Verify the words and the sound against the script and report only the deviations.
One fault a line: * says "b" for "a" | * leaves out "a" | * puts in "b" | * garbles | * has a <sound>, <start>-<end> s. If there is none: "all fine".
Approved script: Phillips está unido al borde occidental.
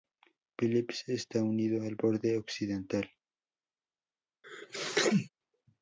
* has a sneeze, 4.4-5.3 s